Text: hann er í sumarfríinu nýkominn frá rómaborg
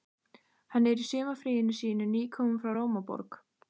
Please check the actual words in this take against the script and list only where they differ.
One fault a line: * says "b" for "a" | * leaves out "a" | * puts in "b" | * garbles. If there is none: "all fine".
* puts in "sínu"